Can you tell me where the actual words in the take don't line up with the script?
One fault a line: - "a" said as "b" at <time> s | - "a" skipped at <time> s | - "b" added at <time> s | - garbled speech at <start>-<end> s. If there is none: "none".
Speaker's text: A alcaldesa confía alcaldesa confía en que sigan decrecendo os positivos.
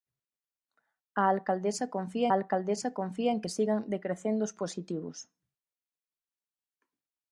none